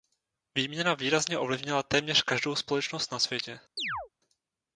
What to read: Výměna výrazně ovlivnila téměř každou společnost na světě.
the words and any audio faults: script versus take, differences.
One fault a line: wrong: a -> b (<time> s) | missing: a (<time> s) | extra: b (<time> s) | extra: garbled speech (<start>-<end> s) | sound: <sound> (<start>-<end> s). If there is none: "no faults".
sound: chirp (3.8-4.1 s)